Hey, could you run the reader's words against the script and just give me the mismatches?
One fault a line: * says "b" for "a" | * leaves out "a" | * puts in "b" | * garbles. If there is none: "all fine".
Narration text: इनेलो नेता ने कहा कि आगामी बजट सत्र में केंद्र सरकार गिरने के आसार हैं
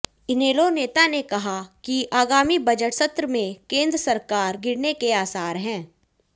all fine